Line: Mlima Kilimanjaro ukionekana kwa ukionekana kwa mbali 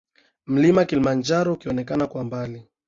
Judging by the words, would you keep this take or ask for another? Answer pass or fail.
fail